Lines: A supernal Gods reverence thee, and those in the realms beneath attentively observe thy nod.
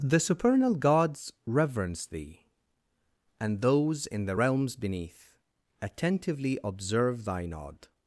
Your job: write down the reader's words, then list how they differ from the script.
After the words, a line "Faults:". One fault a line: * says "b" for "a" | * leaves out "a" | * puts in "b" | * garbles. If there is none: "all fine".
The supernal Gods reverence thee, and those in the realms beneath attentively observe thy nod.
Faults:
* says "The" for "A"